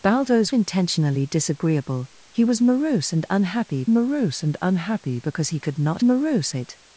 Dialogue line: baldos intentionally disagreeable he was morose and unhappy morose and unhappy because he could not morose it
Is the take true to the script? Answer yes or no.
yes